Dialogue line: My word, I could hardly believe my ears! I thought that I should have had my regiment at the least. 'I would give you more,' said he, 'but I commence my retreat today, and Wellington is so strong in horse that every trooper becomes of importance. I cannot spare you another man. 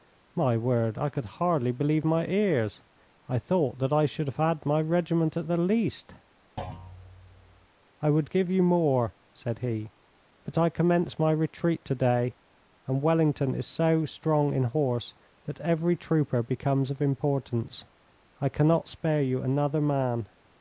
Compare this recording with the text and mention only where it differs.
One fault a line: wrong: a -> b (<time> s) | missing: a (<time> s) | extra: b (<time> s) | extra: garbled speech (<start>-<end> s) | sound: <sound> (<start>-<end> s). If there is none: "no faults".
sound: thud (6.6-7.7 s)